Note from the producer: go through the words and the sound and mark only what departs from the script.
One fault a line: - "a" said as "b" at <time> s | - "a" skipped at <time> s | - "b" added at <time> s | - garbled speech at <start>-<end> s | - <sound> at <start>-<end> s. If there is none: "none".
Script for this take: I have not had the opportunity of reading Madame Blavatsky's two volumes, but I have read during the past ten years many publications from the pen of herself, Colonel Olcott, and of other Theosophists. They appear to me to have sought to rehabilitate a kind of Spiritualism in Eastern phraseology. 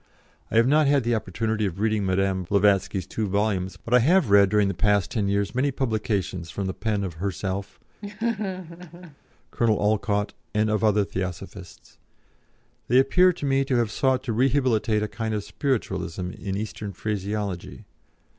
- laugh at 8.0-9.2 s